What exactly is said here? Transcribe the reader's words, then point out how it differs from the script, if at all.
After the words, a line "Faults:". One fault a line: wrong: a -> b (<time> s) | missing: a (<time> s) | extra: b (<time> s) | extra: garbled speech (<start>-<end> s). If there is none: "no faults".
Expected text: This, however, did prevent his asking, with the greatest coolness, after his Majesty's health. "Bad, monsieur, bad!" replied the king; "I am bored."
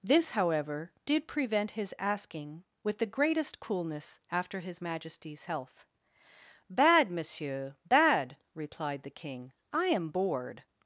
This, however, did prevent his asking, with the greatest coolness, after his Majesty's health. "Bad, monsieur, bad!" replied the king; "I am bored."
Faults:
no faults